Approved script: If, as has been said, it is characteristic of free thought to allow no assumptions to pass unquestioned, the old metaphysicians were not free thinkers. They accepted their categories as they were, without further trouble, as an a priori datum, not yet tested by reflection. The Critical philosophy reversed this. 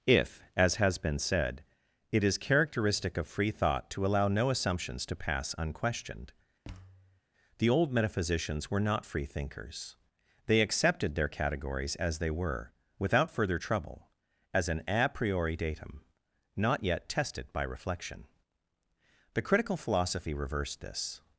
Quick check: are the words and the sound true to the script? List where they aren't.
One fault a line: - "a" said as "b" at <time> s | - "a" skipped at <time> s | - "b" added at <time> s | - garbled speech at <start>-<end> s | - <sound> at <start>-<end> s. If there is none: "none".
- thud at 6.6-7.2 s